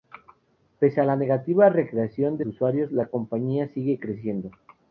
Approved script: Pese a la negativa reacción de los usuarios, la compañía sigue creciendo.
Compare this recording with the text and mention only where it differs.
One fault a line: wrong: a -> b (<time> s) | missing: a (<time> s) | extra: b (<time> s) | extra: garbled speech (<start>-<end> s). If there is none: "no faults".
missing: los (2.5 s)